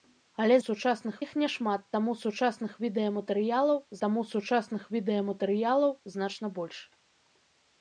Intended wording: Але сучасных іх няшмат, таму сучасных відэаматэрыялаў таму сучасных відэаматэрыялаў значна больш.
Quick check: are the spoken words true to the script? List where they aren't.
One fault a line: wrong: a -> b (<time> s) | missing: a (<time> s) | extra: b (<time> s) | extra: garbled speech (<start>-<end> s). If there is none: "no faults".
no faults